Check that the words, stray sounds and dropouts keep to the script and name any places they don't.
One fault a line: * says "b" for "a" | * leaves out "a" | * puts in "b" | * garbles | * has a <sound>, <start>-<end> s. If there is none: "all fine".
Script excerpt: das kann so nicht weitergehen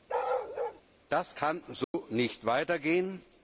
* has a bark, 0.1-0.8 s
* has a dropout, 1.8-1.9 s